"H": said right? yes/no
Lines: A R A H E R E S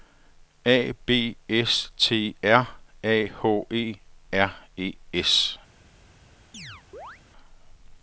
yes